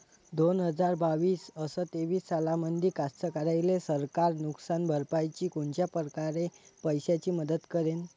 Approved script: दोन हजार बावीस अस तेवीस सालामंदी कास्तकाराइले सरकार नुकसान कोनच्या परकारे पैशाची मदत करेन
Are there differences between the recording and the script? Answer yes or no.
yes